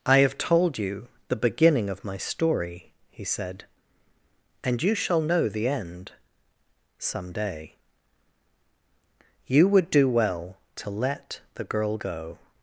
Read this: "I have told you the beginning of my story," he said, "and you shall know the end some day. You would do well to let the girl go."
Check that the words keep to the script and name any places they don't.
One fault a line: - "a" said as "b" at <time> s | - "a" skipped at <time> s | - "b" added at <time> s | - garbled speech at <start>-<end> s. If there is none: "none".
none